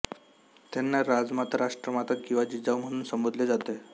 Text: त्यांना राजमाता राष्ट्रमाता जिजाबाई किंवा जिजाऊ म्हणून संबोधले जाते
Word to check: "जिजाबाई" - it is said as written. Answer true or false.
false